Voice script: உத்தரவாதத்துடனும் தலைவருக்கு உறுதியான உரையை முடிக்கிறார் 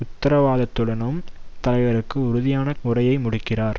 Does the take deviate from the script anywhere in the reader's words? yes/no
no